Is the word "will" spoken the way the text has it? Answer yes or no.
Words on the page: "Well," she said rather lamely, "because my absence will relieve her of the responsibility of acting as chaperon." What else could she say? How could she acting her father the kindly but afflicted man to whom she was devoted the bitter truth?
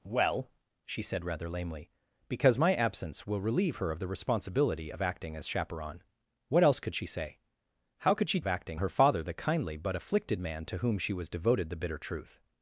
yes